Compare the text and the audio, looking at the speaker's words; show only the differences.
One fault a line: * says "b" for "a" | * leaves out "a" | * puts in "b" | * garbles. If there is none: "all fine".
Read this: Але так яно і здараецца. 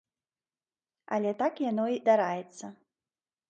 * leaves out "і"